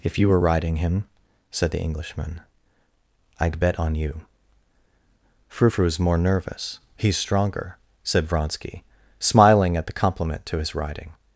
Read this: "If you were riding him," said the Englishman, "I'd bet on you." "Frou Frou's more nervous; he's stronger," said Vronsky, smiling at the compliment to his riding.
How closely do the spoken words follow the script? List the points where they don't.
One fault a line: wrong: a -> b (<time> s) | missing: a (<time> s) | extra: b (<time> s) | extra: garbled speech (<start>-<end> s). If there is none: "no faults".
no faults